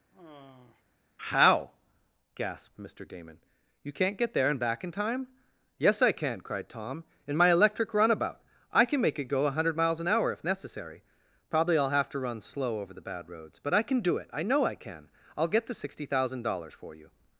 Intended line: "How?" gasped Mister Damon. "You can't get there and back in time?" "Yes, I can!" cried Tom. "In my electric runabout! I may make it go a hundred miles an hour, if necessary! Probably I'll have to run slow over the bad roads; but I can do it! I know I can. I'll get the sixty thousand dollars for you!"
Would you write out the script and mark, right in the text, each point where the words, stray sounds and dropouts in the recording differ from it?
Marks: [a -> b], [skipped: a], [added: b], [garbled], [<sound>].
[sigh] "How?" gasped Mister Damon. "You can't get there and back in time?" "Yes, I can!" cried Tom. "In my electric runabout! I [may -> can] make it go a hundred miles an hour, if necessary! Probably I'll have to run slow over the bad roads; but I can do it! I know I can. I'll get the sixty thousand dollars for you!"